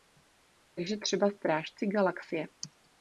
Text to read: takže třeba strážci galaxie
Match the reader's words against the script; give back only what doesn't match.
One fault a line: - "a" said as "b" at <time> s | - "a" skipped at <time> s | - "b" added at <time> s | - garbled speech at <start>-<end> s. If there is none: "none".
none